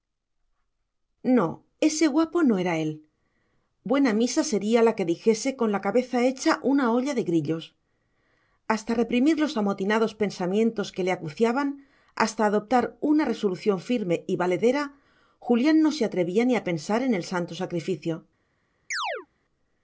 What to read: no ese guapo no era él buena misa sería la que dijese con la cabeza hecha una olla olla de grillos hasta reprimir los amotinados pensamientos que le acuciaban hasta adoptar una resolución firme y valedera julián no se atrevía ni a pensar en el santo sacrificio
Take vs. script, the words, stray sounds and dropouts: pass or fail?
fail